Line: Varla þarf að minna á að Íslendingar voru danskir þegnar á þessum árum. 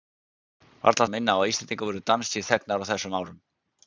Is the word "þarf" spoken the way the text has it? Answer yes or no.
no